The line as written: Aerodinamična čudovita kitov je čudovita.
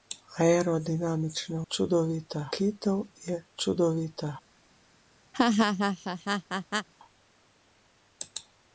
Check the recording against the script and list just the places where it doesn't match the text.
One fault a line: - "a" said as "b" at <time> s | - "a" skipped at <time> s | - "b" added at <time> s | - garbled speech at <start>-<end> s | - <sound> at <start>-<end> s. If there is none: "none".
- laugh at 5.3-6.9 s